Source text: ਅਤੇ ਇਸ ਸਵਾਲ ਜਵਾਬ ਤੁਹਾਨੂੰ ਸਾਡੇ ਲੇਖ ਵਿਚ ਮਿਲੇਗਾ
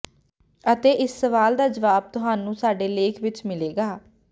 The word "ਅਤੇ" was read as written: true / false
true